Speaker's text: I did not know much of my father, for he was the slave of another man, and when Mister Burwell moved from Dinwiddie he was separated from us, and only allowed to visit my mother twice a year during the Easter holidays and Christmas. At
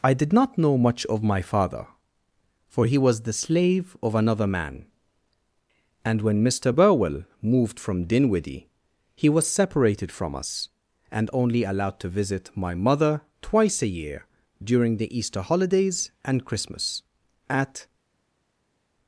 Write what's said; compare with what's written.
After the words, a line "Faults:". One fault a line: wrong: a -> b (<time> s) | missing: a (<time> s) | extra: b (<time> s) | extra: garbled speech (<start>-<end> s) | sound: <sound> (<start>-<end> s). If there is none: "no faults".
I did not know much of my father, for he was the slave of another man, and when Mister Burwell moved from Dinwiddie he was separated from us, and only allowed to visit my mother twice a year during the Easter holidays and Christmas. At
Faults:
no faults